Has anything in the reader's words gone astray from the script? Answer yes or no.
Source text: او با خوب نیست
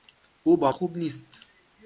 no